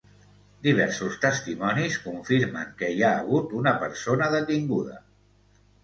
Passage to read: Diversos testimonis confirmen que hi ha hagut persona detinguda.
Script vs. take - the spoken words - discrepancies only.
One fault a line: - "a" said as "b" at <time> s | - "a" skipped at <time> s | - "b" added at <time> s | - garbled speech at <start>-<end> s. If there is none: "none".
- "una" added at 3.6 s